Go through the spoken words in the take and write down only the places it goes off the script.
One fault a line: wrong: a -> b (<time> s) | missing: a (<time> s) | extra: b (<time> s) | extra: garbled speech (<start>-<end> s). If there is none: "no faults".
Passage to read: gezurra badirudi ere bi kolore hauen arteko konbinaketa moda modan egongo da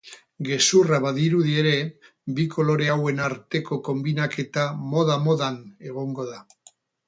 no faults